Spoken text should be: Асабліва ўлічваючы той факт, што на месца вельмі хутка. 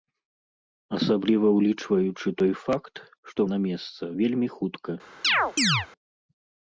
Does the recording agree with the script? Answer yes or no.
yes